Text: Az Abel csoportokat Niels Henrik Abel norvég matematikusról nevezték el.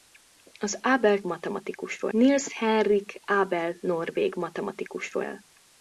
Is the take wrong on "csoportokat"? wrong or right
wrong